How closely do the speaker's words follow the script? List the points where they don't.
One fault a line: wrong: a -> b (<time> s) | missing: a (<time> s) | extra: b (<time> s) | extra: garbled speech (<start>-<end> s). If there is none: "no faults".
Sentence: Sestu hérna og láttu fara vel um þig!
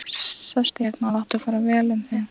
no faults